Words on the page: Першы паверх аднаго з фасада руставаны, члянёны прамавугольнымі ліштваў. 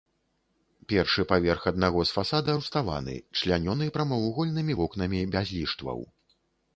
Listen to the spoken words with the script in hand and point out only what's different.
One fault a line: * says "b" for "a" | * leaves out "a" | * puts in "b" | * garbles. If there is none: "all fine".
* puts in "вокнамі без"